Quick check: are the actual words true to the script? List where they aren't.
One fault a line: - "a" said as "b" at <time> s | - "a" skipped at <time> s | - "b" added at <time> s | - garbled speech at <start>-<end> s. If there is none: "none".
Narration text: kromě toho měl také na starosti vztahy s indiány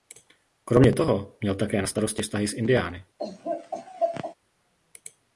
none